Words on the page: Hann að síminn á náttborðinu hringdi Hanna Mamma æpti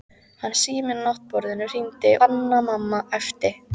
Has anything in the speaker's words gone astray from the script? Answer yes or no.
no